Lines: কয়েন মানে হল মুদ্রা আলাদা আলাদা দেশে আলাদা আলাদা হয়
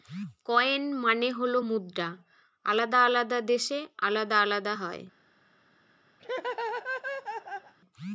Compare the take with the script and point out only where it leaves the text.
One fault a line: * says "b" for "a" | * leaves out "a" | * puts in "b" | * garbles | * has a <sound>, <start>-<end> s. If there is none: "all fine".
* has a laugh, 6.2-7.7 s